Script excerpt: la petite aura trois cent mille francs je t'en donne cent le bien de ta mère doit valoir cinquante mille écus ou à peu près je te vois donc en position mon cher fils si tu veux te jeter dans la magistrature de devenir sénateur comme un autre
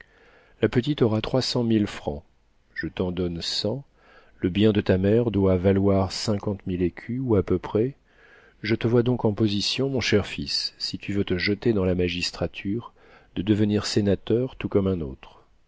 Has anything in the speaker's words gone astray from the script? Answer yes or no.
yes